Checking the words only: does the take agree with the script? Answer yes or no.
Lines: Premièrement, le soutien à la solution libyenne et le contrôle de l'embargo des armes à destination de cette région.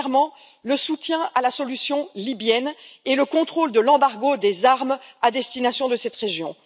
yes